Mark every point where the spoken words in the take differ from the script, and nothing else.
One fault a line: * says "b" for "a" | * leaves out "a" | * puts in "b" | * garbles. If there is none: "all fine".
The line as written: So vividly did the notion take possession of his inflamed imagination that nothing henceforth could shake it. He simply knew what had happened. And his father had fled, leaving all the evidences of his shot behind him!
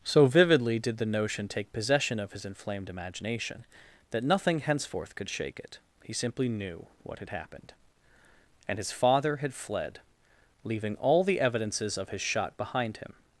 all fine